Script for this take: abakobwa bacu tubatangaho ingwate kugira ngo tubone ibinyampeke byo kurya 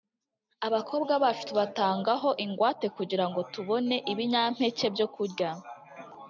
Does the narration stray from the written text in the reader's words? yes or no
no